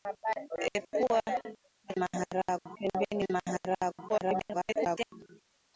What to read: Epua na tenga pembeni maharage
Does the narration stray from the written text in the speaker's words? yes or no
yes